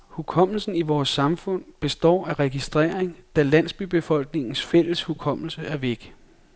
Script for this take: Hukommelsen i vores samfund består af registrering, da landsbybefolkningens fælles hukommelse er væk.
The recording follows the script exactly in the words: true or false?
true